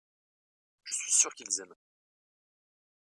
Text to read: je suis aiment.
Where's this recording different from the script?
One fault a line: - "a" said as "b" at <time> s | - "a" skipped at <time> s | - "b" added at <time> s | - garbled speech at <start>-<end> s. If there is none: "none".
- "sûr qu'ils" added at 1.1 s